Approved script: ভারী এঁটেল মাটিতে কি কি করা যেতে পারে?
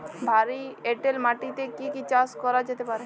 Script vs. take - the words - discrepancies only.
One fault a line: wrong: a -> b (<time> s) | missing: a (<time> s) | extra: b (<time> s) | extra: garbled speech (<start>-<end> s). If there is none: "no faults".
extra: চাষ (2.1 s)